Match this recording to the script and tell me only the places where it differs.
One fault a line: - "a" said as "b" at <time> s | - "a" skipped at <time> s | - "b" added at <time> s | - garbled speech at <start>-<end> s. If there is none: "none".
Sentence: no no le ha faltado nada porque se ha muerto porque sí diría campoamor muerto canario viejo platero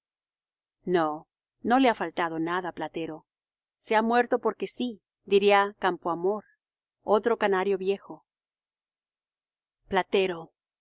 - "porque" said as "platero" at 2.7 s
- "muerto" said as "otro" at 7.0 s